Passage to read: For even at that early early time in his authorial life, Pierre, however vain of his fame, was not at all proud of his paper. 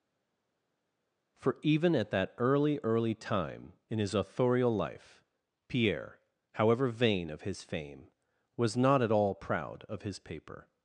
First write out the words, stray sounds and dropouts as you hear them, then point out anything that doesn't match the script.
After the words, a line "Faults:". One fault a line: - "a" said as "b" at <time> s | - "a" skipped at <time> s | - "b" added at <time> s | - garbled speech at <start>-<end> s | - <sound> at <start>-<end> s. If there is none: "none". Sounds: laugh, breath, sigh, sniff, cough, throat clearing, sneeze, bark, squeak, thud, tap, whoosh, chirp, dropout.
For even at that early early time in his authorial life, Pierre, however vain of his fame, was not at all proud of his paper.
Faults:
none